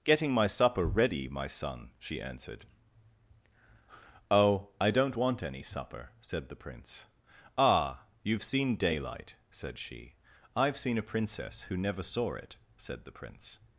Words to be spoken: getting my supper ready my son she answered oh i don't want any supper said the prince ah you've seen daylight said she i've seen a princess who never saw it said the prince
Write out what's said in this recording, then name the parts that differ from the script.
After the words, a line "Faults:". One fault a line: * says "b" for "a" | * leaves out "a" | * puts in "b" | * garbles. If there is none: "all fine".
getting my supper ready my son she answered oh i don't want any supper said the prince ah you've seen daylight said she i've seen a princess who never saw it said the prince
Faults:
all fine